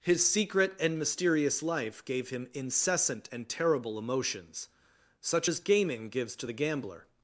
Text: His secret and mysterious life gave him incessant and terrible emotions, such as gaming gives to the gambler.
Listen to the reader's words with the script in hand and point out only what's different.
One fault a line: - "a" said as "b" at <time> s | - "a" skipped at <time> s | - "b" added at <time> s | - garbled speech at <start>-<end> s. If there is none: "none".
none